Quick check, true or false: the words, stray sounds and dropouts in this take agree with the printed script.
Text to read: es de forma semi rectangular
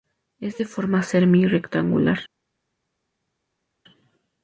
true